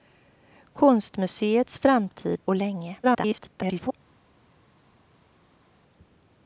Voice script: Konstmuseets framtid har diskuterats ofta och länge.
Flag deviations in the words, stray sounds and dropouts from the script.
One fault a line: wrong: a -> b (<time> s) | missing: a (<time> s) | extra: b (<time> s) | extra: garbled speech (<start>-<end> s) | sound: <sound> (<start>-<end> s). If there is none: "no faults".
missing: har diskuterats ofta (2.5 s)
extra: garbled speech (3.0-3.9 s)